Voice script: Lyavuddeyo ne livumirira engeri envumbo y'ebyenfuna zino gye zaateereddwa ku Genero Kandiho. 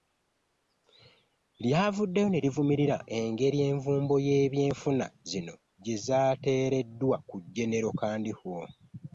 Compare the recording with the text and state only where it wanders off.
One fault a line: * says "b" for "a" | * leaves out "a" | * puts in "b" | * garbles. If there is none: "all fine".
all fine